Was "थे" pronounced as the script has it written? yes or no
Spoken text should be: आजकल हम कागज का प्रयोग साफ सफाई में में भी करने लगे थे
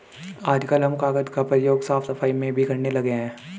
no